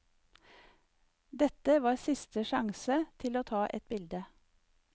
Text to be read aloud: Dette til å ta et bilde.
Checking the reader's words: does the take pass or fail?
fail